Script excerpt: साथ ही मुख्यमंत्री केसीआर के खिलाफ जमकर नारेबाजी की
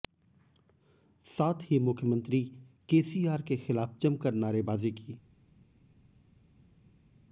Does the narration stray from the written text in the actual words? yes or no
no